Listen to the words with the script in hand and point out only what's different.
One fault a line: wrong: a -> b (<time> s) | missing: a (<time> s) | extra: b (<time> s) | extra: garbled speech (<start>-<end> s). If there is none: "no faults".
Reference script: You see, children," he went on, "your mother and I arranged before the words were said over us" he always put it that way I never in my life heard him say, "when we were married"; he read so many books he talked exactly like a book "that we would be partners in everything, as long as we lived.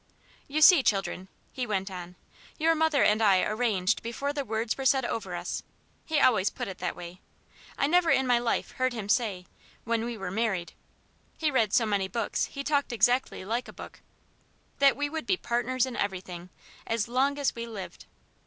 no faults